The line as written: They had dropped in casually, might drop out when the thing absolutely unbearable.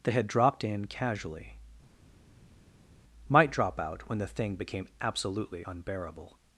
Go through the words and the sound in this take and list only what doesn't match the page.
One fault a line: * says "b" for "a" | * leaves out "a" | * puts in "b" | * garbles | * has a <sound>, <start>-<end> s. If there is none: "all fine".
* puts in "became"